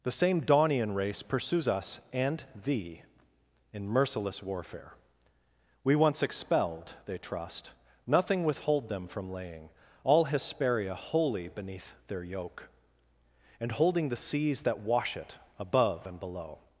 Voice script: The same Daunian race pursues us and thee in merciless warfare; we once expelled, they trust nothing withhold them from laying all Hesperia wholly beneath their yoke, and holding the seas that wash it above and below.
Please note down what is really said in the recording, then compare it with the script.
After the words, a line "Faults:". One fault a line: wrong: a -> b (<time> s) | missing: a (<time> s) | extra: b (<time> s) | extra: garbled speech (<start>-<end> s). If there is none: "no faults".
The same Daunian race pursues us and thee in merciless warfare; we once expelled, they trust nothing withhold them from laying all Hesperia wholly beneath their yoke, and holding the seas that wash it above and below.
Faults:
no faults